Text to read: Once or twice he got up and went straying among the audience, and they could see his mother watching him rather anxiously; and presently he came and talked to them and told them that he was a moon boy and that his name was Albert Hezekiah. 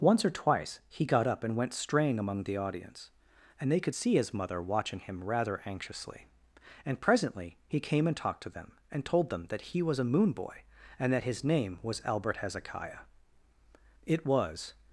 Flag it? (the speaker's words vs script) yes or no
yes